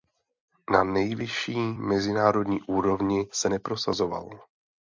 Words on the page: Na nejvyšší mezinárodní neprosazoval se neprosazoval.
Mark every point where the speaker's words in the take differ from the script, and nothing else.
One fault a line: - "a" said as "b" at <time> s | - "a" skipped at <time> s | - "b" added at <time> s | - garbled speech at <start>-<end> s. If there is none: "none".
- "neprosazoval" said as "úrovni" at 2.6 s